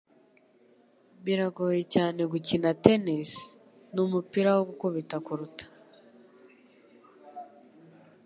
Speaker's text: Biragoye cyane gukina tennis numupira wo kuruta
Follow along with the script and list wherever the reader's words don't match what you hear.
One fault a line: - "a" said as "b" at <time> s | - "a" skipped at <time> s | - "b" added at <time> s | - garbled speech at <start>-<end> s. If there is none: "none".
- "gukubita" added at 4.7 s